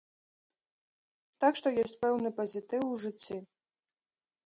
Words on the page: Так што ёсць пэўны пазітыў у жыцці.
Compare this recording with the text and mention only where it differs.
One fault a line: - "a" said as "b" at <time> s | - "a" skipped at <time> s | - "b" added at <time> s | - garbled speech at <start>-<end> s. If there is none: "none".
none